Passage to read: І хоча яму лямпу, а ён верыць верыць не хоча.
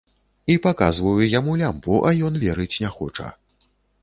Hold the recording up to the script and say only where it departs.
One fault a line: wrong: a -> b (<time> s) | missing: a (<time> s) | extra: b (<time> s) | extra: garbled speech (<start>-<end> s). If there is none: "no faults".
wrong: хоча -> паказваю (0.6 s)
missing: верыць (2.8 s)